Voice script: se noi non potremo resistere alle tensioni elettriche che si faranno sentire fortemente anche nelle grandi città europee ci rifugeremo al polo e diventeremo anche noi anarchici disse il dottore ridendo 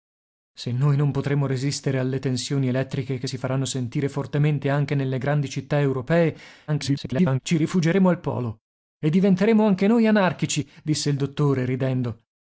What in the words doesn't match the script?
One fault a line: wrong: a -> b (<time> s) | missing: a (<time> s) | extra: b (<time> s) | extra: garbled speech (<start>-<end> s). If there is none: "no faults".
extra: garbled speech (6.7-7.4 s)